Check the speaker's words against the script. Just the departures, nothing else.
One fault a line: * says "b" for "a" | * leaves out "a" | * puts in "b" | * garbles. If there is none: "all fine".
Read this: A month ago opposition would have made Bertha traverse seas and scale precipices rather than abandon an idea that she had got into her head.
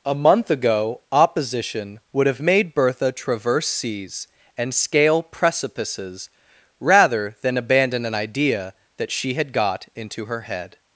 all fine